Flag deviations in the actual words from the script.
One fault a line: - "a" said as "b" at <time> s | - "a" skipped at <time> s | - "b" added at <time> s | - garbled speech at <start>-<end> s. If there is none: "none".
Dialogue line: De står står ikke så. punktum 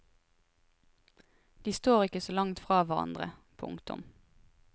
- "står" skipped at 2.0 s
- "langt fra hverandre" added at 2.3 s